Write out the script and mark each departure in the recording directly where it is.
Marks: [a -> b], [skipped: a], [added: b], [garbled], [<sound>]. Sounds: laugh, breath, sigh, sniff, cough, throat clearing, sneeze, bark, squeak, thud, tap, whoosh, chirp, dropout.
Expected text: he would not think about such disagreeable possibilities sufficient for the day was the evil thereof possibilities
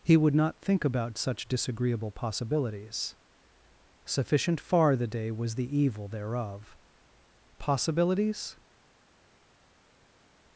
he would not think about such disagreeable possibilities sufficient [for -> far] the day was the evil thereof possibilities